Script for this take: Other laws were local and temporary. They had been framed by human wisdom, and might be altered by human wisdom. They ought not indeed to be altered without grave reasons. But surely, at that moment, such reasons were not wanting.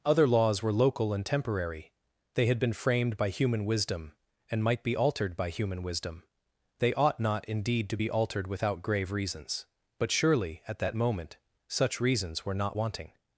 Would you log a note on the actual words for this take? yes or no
no